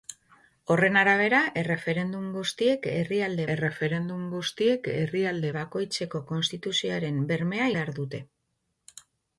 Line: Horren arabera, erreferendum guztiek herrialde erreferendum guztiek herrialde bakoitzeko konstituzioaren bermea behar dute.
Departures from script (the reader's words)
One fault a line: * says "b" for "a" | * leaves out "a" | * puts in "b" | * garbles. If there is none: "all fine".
all fine